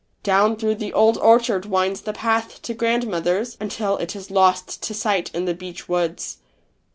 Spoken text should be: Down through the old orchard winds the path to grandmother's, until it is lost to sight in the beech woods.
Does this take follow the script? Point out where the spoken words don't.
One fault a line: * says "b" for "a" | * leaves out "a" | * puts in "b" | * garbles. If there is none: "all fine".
all fine